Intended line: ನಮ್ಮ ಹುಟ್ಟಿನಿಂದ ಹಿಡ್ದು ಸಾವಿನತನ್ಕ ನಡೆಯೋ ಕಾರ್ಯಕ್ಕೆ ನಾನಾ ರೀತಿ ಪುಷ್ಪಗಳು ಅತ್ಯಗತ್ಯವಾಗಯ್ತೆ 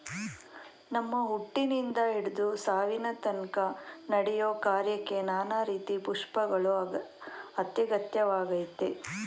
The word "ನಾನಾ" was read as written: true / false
true